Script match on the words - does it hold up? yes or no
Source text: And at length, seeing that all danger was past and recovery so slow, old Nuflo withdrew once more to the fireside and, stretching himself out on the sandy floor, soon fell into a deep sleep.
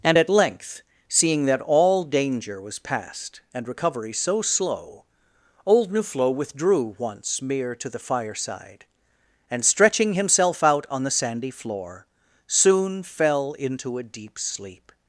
no